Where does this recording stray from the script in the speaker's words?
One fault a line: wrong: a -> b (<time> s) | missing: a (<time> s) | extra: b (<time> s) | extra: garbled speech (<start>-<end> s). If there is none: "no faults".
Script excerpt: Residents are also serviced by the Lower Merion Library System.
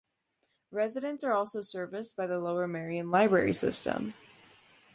no faults